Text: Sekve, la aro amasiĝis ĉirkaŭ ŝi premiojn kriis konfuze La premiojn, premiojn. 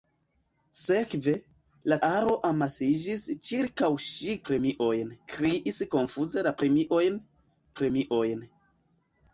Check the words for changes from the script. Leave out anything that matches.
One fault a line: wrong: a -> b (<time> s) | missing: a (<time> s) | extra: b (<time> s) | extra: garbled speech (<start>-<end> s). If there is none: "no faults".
no faults